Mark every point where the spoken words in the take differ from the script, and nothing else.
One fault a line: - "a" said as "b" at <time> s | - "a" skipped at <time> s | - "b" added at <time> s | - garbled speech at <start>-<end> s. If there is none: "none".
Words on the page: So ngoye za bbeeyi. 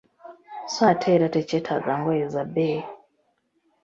- "ate era tekyetaaga" added at 0.9 s